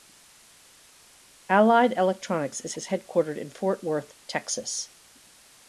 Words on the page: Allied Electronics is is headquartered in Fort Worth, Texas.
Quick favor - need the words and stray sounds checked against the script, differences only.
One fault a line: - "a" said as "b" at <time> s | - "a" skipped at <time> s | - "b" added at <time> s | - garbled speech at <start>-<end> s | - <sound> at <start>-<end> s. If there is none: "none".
none